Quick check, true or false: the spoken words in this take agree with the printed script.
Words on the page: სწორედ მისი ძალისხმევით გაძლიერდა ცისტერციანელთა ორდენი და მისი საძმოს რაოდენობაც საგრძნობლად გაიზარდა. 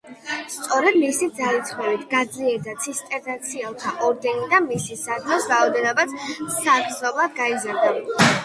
true